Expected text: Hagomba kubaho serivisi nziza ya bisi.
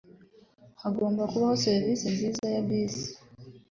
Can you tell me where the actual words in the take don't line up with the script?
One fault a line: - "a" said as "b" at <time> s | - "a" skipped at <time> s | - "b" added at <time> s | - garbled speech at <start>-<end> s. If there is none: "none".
none